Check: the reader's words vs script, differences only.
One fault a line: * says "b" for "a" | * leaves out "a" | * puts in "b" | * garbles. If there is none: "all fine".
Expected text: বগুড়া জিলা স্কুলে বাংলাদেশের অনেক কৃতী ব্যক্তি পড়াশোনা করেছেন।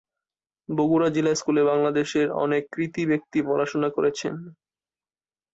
all fine